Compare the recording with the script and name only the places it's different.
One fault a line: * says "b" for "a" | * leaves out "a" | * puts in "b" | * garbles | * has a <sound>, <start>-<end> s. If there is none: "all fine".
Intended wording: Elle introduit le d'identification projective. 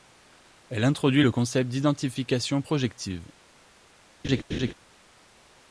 * puts in "concept"
* has a laugh, 4.2-4.7 s